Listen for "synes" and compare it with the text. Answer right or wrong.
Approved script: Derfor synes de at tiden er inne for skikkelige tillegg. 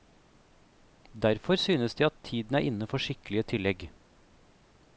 right